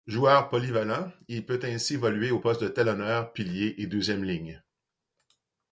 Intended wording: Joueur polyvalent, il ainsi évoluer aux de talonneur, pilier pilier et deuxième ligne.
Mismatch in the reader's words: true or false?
true